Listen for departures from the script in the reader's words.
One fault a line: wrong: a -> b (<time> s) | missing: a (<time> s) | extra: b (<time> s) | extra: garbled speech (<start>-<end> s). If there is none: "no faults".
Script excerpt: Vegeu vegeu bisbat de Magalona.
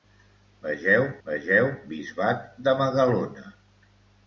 no faults